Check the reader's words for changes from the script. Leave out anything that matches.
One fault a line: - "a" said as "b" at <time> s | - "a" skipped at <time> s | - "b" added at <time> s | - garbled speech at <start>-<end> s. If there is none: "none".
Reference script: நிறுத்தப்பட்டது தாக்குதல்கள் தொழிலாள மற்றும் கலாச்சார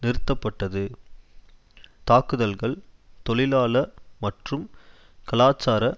none